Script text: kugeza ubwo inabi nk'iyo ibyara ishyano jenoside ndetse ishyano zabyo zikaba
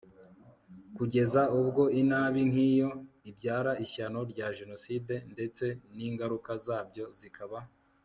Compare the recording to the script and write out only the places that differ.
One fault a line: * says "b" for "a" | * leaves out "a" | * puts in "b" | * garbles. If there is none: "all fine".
* puts in "rya"
* says "n'ingaruka" for "ishyano"